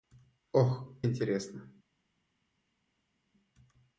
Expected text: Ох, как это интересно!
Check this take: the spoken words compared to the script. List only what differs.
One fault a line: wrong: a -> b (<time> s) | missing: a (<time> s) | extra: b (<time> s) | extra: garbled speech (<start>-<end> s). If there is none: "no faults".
missing: как это (1.0 s)